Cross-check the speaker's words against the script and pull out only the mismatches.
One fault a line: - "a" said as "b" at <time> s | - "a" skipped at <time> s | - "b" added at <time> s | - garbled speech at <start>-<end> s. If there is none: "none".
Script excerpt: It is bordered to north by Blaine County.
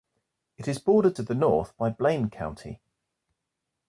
- "the" added at 1.2 s